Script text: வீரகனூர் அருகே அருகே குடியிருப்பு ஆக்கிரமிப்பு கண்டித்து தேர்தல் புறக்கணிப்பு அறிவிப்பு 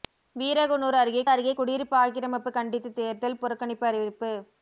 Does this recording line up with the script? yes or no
yes